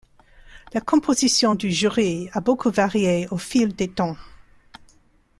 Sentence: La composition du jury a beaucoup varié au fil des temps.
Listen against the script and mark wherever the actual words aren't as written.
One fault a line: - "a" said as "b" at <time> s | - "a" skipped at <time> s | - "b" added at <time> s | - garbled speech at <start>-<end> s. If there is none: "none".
none